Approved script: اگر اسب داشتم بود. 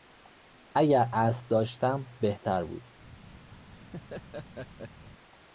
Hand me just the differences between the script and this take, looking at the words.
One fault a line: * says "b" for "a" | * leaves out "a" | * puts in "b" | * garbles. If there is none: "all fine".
* puts in "بهتر"